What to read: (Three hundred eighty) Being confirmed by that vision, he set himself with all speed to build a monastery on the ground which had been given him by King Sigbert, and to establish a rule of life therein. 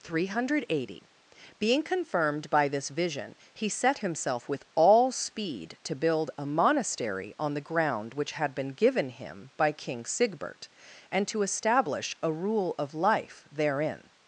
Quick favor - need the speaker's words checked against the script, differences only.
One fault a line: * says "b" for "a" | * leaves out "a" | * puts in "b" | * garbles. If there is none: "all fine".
* says "this" for "that"